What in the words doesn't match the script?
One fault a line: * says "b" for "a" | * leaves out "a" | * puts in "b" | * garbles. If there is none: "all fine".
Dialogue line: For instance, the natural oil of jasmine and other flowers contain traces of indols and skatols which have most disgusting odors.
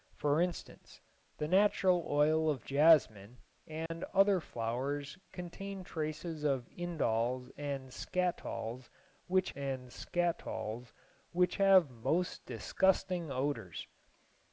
* puts in "and skatols which"